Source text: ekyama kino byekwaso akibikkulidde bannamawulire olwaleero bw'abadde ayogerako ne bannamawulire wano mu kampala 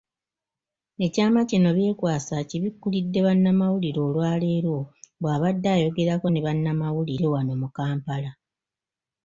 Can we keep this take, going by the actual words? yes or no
yes